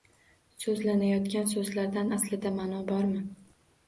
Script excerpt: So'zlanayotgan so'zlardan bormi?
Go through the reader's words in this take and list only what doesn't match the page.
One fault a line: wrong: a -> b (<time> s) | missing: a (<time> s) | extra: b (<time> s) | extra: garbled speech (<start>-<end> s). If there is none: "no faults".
extra: aslida ma'no (2.2 s)